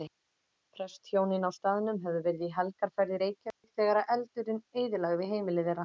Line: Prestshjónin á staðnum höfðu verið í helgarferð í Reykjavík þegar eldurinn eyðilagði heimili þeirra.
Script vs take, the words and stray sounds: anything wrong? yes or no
yes